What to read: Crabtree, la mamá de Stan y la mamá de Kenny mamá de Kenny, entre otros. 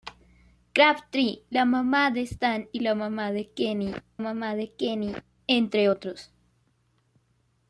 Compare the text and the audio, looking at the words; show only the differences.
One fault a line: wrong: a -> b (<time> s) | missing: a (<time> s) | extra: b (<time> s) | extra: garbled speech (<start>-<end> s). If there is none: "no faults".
no faults